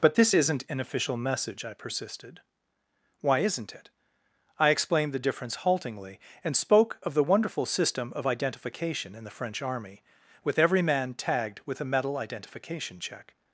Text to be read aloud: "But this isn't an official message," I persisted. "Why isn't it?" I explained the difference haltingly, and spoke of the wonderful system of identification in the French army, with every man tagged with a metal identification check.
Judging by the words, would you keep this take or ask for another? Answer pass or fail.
pass